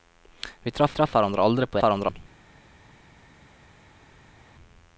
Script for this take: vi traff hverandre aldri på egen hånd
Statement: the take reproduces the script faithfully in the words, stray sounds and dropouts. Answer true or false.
false